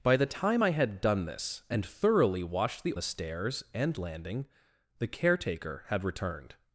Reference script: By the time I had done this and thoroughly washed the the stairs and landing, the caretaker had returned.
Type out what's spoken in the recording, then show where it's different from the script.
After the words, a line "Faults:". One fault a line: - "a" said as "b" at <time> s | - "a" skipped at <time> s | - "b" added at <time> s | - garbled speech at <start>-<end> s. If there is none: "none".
By the time I had done this and thoroughly washed the the stairs and landing, the caretaker had returned.
Faults:
none